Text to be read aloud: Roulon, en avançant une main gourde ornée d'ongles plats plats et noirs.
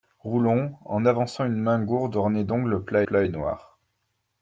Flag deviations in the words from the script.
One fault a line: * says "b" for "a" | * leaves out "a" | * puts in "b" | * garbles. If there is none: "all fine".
all fine